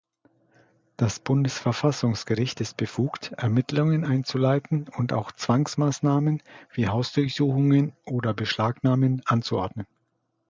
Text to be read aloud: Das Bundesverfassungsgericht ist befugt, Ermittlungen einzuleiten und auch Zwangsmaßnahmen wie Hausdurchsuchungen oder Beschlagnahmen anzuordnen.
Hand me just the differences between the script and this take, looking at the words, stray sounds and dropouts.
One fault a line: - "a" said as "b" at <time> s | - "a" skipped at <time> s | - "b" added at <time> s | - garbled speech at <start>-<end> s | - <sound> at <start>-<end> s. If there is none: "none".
none